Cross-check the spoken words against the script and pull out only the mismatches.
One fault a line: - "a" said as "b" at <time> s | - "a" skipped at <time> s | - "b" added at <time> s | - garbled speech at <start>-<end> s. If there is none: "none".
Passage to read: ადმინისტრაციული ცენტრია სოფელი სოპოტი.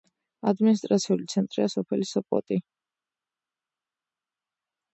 none